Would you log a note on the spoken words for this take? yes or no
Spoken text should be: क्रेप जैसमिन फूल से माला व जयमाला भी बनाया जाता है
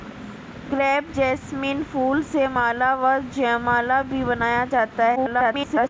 yes